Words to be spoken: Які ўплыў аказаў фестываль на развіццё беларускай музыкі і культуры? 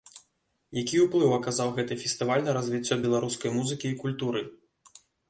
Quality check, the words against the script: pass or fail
fail